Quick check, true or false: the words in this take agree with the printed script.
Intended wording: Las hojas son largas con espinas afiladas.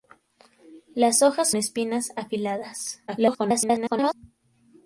false